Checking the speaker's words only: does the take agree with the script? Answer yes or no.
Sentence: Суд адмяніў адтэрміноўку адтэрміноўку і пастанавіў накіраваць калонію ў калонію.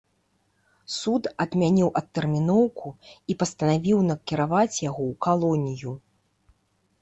no